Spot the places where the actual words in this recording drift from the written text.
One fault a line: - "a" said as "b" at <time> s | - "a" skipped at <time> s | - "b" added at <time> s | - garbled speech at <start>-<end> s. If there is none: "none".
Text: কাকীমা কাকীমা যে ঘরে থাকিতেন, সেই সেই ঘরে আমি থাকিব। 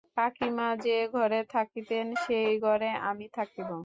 - "কাকীমা" skipped at 0.7 s
- "সেই" skipped at 2.5 s